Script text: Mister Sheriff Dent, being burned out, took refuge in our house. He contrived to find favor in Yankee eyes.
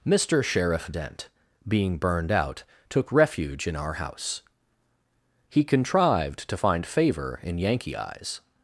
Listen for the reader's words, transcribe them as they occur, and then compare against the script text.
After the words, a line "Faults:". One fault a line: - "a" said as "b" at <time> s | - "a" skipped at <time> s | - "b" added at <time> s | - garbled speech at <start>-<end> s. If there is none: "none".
Mister Sheriff Dent, being burned out, took refuge in our house. He contrived to find favor in Yankee eyes.
Faults:
none